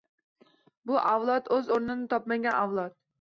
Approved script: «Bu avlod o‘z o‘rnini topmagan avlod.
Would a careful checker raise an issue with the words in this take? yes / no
no